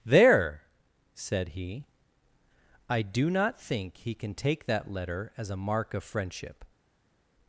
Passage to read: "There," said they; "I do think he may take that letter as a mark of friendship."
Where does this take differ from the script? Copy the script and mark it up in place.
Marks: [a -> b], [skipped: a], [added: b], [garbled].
"There," said [they; -> he] "I do [added: not] think he [may -> can] take that letter as a mark of friendship."